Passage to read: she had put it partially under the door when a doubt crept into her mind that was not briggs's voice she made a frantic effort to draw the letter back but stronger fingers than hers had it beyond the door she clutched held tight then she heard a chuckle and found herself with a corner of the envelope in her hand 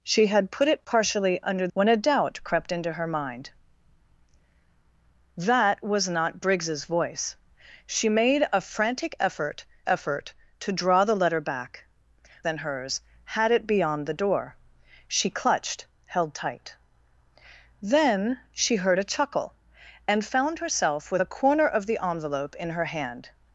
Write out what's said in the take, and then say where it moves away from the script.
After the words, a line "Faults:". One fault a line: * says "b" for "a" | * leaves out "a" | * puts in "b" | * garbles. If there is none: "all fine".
she had put it partially under when a doubt crept into her mind that was not briggs's voice she made a frantic effort effort to draw the letter back than hers had it beyond the door she clutched held tight then she heard a chuckle and found herself with a corner of the envelope in her hand
Faults:
* leaves out "the door"
* puts in "effort"
* leaves out "but stronger fingers"